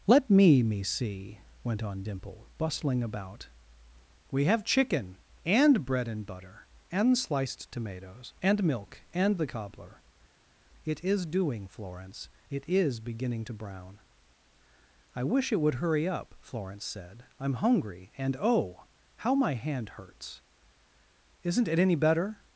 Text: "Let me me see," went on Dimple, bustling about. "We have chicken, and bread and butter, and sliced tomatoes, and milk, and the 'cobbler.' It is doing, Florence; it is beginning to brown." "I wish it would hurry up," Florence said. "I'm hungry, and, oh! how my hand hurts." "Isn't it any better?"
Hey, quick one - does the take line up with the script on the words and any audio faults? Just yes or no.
yes